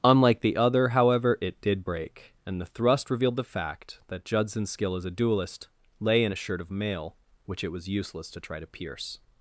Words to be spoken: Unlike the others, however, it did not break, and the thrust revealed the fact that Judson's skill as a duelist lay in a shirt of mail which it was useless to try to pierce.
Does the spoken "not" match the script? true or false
false